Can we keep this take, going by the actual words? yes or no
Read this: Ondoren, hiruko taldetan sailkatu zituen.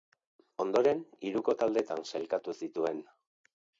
yes